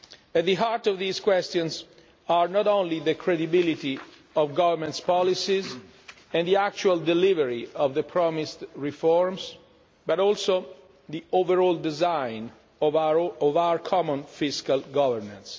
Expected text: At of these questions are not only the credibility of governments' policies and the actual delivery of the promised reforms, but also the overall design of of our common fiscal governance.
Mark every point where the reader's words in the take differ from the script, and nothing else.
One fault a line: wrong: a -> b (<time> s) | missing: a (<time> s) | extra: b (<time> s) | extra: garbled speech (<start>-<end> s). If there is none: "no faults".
extra: the heart (0.5 s)
missing: of (12.9 s)